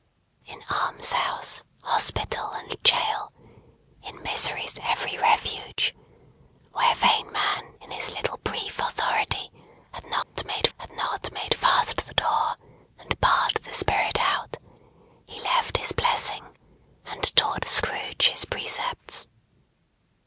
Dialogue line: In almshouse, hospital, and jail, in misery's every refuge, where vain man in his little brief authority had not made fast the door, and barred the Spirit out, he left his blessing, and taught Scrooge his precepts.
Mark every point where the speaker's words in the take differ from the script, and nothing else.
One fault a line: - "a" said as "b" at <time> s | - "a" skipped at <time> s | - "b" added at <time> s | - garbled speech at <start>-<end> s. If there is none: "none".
- "had not made" added at 10.8 s